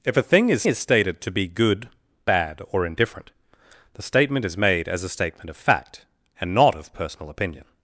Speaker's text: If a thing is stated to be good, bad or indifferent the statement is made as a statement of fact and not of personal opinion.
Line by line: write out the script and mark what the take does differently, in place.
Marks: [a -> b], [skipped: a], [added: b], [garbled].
If a thing is [added: is] stated to be good, bad or indifferent the statement is made as a statement of fact and not of personal opinion.